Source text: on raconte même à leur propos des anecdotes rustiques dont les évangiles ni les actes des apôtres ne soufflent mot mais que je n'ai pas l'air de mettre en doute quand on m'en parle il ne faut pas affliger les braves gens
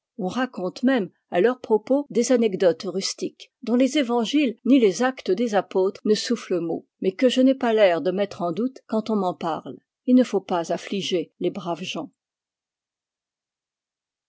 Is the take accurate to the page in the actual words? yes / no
yes